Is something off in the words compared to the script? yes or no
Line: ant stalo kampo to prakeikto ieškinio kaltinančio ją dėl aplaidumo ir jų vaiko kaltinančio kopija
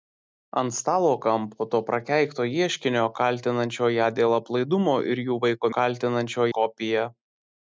no